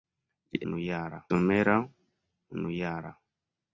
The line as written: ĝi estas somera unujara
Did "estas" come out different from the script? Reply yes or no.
yes